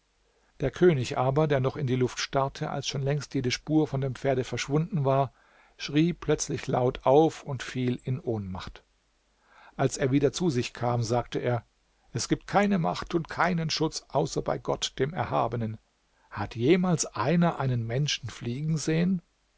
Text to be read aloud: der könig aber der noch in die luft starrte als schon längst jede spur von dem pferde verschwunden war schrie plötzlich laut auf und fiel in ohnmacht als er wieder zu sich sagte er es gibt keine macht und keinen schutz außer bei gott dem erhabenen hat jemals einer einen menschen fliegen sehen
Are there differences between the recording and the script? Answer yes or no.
yes